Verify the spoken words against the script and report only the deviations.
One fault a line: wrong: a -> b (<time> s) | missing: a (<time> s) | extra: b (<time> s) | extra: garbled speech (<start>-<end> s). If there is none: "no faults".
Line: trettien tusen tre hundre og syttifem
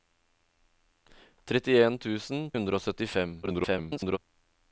missing: tre (2.4 s)
extra: garbled speech (3.4-4.2 s)